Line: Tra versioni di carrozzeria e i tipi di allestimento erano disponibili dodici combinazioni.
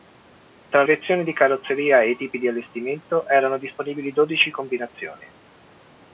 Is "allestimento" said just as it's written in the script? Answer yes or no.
yes